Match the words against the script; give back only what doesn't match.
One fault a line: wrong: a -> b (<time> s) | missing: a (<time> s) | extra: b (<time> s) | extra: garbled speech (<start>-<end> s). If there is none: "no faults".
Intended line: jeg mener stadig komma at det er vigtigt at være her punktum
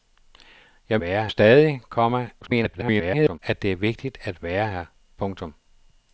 wrong: mener -> være (1.0 s)
extra: garbled speech (2.4-3.4 s)